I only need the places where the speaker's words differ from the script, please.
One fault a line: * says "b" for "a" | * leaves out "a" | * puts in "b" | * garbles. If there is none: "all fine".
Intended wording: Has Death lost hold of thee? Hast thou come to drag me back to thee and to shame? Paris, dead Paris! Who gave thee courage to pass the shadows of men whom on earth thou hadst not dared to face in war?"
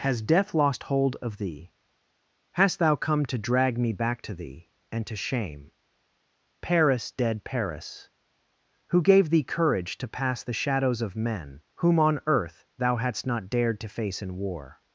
all fine